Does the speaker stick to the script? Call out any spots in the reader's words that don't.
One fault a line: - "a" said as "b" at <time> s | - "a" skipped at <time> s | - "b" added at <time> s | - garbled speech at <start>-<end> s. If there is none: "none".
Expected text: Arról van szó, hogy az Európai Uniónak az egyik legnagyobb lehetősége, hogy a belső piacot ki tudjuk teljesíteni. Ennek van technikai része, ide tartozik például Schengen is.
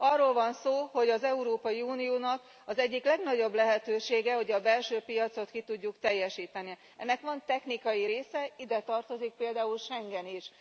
none